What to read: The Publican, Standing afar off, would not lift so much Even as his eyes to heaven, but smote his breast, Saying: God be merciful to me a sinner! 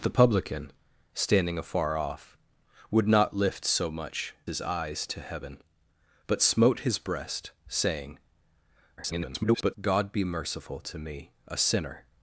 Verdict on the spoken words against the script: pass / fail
fail